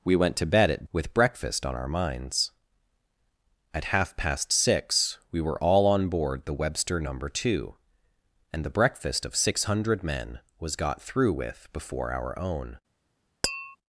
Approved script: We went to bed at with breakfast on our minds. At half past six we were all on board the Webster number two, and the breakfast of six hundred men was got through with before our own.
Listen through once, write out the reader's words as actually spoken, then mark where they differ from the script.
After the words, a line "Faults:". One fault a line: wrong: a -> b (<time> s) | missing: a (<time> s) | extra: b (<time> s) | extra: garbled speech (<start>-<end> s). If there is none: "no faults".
We went to bed at with breakfast on our minds. At half past six we were all on board the Webster number two, and the breakfast of six hundred men was got through with before our own.
Faults:
no faults